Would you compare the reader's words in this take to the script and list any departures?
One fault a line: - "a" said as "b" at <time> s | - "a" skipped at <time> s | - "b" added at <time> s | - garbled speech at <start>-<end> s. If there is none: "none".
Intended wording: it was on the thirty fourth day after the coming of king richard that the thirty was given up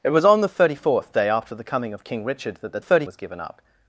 none